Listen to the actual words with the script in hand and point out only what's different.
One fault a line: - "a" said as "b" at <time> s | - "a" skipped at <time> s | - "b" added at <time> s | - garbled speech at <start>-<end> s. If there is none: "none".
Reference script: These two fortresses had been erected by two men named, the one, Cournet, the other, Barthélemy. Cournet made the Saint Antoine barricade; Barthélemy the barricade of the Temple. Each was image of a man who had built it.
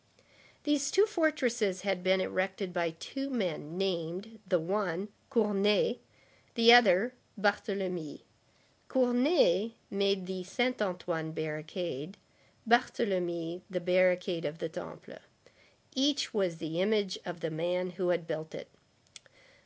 - "the" added at 16.6 s
- "a" said as "the" at 17.4 s